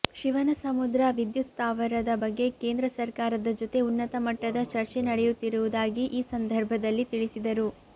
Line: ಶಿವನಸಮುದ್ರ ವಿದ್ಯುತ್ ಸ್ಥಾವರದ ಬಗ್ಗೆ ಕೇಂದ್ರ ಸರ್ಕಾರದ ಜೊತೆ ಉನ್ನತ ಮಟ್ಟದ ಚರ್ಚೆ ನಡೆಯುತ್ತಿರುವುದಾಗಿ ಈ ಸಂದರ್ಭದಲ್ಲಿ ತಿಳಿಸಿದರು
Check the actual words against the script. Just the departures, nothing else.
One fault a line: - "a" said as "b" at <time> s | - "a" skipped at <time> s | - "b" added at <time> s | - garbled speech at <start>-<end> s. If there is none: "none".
none